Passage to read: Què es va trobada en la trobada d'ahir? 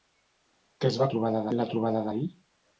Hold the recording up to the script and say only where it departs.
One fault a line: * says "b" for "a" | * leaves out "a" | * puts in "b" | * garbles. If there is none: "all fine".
all fine